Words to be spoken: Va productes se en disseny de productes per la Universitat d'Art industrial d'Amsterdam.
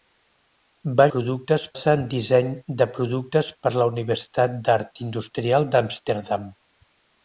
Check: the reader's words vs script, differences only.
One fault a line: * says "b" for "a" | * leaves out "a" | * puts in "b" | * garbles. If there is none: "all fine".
all fine